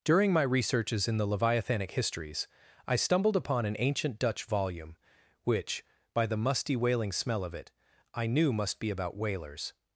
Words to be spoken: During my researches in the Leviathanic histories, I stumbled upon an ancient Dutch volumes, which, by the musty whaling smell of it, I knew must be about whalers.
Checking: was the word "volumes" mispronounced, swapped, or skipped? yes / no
yes